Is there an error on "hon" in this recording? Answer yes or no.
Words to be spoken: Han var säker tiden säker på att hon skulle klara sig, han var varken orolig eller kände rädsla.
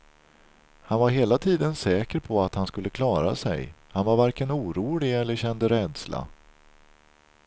yes